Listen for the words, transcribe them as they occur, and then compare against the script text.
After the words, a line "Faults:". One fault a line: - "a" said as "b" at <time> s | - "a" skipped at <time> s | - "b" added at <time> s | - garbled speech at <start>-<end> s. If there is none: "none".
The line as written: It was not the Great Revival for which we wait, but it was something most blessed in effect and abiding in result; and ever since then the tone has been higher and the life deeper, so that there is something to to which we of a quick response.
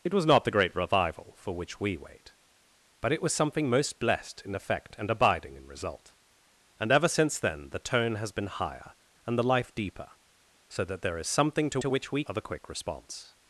It was not the Great Revival for which we wait, but it was something most blessed in effect and abiding in result; and ever since then the tone has been higher and the life deeper, so that there is something to to which we of a quick response.
Faults:
none